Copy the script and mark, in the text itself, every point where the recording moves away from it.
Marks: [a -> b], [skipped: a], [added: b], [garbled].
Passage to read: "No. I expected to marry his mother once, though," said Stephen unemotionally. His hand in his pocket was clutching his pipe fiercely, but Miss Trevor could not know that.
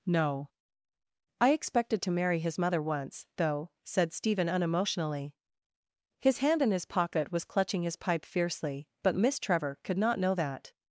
"No. I expected to marry his mother once, though," said Stephen unemotionally. His hand in his pocket was clutching his pipe fiercely, but Miss Trevor could not know that.